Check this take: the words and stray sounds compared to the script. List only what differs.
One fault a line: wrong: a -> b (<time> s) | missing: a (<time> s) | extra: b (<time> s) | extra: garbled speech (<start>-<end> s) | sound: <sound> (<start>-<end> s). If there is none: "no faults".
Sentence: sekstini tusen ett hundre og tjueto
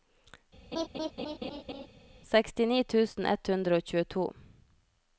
sound: laugh (0.7-1.9 s)